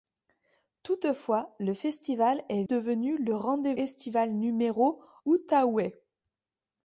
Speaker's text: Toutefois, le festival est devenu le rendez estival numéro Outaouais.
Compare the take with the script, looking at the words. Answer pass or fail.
pass